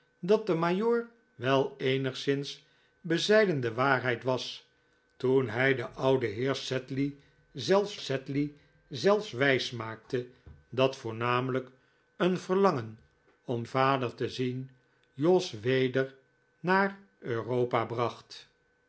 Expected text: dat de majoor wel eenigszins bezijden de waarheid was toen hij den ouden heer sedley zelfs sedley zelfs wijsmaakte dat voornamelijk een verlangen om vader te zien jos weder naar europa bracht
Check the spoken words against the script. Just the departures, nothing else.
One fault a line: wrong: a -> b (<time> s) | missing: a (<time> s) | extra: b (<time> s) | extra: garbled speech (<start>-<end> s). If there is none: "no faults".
no faults